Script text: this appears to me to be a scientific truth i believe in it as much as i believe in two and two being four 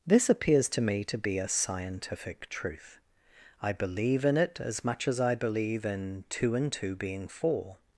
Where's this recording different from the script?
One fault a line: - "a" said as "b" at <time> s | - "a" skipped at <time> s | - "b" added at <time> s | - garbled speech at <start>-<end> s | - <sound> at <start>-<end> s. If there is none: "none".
none